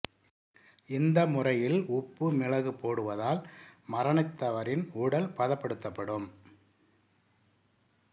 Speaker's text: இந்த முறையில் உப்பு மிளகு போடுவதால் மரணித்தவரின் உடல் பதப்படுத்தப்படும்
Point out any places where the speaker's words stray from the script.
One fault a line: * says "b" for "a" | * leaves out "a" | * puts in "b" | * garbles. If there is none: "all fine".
all fine